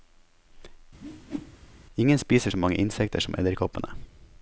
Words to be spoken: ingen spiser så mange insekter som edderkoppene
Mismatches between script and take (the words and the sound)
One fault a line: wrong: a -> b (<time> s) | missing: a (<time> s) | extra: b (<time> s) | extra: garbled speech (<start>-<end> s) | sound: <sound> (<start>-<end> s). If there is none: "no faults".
sound: whoosh (1.0-1.8 s)